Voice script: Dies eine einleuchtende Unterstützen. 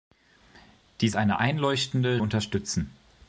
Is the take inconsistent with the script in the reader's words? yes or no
no